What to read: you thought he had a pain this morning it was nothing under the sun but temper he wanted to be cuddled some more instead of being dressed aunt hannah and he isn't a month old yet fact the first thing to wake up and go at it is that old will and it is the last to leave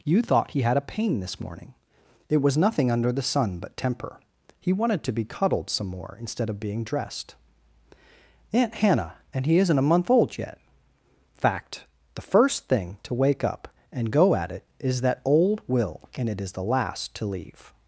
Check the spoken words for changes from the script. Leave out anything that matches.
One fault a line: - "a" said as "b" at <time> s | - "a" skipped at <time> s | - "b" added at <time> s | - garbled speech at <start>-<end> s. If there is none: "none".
none